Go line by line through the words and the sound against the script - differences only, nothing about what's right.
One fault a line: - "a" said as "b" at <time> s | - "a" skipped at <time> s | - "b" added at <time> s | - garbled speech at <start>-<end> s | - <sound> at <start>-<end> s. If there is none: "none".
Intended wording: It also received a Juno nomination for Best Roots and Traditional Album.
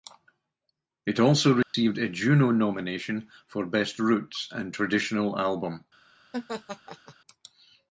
- dropout at 1.6-1.7 s
- laugh at 6.3-7.1 s